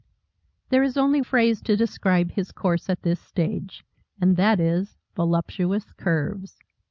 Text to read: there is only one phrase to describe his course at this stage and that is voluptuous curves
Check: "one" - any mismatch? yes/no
yes